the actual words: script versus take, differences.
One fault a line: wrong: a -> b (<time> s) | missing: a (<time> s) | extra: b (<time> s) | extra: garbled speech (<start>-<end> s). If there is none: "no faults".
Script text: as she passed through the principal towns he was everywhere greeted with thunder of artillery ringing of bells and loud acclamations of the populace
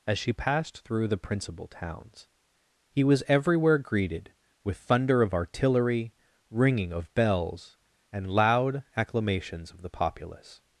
no faults